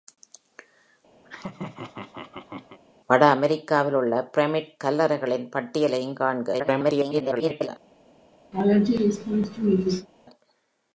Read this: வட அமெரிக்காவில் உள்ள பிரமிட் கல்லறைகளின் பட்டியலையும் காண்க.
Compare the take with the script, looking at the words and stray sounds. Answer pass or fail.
fail